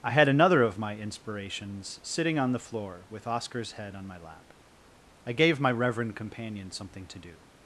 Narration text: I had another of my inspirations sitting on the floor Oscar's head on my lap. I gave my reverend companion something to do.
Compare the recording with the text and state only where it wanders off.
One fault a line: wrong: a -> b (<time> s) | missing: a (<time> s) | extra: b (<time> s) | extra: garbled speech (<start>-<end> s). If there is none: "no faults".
extra: with (3.1 s)